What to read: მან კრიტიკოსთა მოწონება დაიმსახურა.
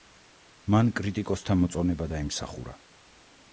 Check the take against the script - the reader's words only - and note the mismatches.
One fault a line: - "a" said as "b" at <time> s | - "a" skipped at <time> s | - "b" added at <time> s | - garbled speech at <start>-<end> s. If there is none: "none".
none